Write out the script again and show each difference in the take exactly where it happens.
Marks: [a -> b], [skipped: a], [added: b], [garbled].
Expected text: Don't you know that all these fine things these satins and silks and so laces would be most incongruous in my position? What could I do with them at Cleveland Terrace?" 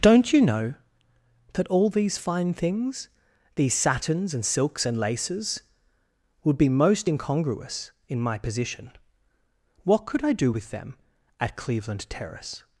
Don't you know that all these fine things these satins and silks and [skipped: so] laces would be most incongruous in my position? What could I do with them at Cleveland Terrace?"